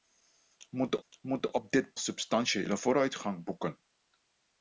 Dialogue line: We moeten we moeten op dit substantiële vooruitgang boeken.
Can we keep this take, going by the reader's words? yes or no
yes